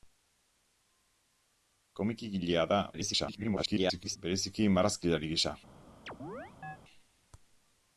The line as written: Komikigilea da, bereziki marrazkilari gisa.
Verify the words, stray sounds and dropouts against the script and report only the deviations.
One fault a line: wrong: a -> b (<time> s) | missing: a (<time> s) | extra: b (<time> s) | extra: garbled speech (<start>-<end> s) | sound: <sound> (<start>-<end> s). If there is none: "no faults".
extra: garbled speech (2.9-4.2 s)
sound: chirp (6.1-6.8 s)